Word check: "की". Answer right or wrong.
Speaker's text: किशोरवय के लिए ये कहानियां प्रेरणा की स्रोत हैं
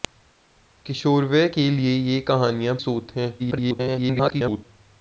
wrong